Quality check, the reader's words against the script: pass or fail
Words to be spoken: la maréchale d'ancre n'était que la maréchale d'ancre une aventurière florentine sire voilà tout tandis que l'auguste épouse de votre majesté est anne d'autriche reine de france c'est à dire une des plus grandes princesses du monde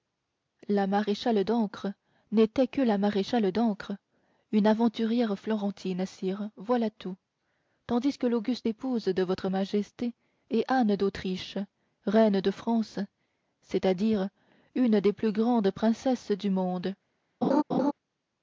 pass